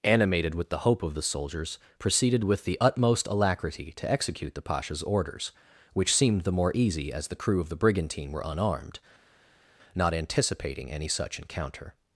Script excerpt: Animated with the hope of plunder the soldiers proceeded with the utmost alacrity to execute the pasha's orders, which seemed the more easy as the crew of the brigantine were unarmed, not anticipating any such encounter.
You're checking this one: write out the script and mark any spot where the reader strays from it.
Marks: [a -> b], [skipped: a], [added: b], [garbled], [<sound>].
Animated with the hope of [skipped: plunder] the soldiers proceeded with the utmost alacrity to execute the pasha's orders, which seemed the more easy as the crew of the brigantine were unarmed, not anticipating any such encounter.